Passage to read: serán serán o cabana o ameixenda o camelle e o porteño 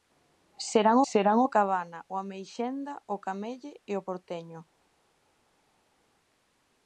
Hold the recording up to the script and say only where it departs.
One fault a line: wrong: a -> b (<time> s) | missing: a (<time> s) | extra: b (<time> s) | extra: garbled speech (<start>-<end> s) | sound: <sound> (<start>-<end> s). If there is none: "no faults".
no faults